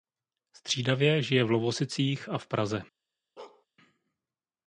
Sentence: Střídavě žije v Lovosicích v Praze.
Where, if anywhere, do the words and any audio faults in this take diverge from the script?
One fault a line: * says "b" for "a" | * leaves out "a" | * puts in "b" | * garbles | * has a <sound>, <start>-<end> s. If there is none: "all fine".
* puts in "a"
* has a bark, 3.4-3.7 s